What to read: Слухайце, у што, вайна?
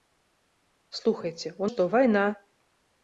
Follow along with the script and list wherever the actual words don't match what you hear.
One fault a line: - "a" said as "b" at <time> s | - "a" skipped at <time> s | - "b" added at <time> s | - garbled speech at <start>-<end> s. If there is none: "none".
none